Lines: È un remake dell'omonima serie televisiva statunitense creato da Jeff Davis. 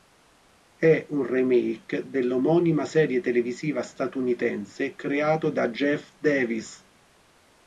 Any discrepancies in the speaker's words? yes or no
no